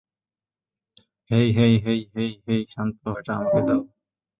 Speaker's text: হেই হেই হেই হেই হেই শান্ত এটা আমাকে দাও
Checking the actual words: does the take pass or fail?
pass